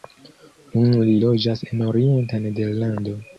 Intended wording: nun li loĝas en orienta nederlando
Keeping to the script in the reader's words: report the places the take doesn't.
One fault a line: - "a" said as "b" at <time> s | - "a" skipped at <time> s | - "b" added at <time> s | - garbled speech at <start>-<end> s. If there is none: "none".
none